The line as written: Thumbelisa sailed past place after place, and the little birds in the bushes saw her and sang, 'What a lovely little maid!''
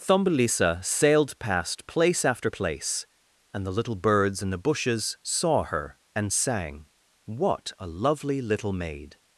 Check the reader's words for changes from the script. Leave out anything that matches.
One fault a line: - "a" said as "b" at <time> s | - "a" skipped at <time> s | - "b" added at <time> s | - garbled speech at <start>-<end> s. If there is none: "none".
none